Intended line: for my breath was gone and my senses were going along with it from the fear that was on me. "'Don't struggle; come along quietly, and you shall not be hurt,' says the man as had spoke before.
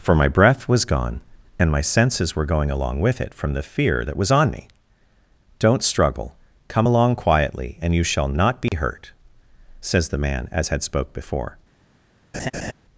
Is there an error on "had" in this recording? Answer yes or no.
no